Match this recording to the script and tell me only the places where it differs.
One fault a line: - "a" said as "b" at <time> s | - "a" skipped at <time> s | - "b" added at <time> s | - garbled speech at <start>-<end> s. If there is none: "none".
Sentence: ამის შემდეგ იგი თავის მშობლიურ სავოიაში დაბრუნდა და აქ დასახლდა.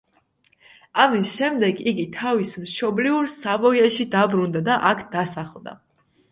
none